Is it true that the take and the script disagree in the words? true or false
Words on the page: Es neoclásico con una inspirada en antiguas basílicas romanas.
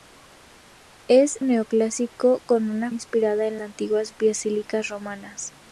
false